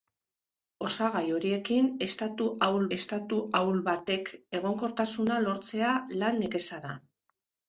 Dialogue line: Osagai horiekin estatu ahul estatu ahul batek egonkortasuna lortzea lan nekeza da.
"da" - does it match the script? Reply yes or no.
yes